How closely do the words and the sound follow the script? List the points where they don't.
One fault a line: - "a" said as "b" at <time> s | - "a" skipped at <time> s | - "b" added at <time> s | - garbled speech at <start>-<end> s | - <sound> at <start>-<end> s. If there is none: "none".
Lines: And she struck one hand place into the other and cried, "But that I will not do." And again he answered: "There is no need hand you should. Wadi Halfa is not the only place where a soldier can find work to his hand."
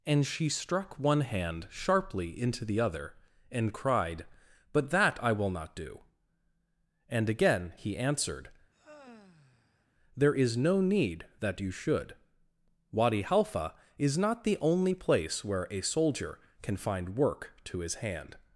- "place" said as "sharply" at 1.7 s
- sigh at 8.7-9.9 s
- "hand" said as "that" at 11.4 s